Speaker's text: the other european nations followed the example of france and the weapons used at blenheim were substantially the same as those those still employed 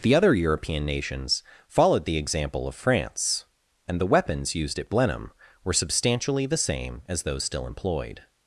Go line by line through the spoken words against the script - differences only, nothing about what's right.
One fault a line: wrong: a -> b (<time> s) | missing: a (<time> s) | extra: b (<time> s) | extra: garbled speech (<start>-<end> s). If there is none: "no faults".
missing: those (7.4 s)